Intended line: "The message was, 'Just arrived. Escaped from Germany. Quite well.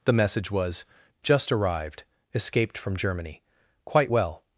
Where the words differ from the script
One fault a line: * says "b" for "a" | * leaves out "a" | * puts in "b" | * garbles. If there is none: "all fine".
all fine